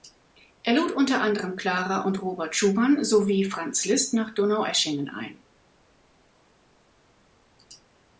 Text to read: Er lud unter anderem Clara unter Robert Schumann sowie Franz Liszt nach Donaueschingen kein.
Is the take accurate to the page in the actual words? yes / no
no